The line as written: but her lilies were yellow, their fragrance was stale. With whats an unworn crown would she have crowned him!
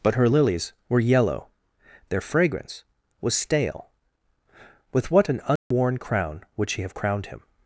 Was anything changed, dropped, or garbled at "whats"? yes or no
yes